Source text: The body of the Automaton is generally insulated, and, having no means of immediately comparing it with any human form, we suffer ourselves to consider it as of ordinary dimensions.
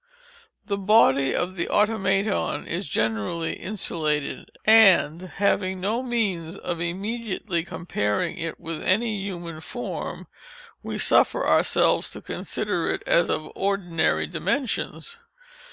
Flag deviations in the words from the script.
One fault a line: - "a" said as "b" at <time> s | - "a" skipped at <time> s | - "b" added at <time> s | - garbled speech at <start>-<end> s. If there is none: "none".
none